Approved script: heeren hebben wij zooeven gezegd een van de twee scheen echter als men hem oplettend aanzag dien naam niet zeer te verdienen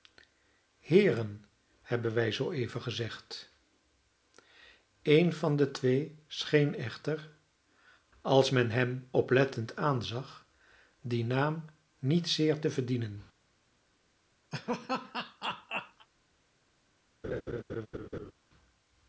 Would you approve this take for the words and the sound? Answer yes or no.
no